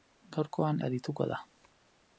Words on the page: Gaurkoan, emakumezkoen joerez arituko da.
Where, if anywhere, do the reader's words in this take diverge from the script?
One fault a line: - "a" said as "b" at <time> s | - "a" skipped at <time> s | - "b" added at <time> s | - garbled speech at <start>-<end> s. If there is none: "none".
- "emakumezkoen joerez" skipped at 0.8 s